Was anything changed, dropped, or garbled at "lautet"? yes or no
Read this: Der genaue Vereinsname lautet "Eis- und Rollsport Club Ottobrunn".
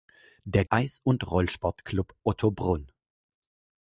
yes